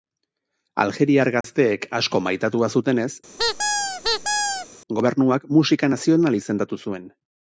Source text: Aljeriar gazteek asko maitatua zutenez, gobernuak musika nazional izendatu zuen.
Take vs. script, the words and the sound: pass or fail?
fail